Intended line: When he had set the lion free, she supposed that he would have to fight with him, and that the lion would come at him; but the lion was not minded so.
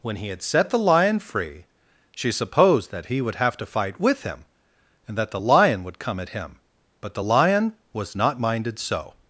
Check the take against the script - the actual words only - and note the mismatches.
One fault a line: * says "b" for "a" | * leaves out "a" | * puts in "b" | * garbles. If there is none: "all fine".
all fine